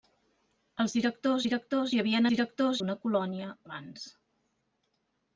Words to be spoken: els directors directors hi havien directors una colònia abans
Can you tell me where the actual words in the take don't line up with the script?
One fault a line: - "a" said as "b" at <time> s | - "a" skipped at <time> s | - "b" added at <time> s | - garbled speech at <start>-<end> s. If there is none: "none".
none